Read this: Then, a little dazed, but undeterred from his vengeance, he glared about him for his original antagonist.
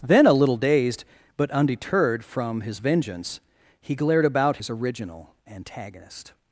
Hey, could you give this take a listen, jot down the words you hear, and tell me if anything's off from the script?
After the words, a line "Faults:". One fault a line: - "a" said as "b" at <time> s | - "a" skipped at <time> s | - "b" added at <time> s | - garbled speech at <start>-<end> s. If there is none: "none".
Then, a little dazed, but undeterred from his vengeance, he glared about his original antagonist.
Faults:
- "him for" skipped at 4.6 s